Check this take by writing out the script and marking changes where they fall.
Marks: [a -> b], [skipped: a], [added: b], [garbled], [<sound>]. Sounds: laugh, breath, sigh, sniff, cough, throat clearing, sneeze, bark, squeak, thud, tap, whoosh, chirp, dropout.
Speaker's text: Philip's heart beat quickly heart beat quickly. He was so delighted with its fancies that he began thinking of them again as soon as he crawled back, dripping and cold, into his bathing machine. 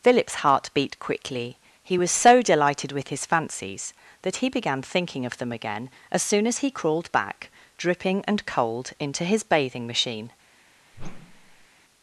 Philip's heart beat quickly [skipped: heart beat quickly.] He was so delighted with [its -> his] fancies that he began thinking of them again as soon as he crawled back, dripping and cold, into his bathing machine. [whoosh]